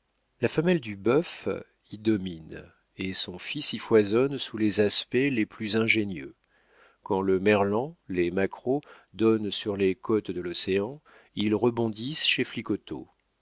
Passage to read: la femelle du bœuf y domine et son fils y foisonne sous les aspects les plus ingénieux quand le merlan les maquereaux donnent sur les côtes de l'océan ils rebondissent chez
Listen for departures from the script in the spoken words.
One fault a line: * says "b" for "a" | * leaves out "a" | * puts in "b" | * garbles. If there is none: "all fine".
all fine